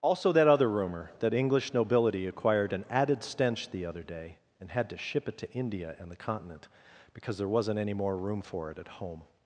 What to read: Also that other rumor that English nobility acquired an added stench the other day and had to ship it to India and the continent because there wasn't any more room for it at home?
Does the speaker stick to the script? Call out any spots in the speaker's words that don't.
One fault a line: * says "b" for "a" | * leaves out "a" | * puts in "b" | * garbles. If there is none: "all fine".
all fine